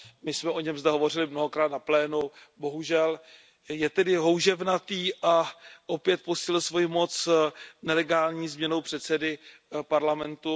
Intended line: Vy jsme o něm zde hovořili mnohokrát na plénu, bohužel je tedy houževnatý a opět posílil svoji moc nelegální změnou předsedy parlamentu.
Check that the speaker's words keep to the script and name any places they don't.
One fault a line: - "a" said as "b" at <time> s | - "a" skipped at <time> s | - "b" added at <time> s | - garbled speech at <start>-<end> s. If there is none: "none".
- "Vy" said as "My" at 0.2 s